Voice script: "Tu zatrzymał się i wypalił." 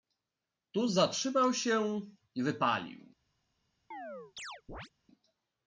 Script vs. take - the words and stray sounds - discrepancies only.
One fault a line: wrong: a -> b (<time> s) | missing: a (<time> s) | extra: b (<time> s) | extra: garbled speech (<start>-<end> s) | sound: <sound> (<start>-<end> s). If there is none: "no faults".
sound: chirp (3.9-4.9 s)